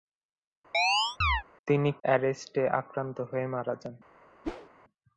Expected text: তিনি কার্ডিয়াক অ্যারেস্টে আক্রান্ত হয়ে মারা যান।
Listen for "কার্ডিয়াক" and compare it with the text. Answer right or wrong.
wrong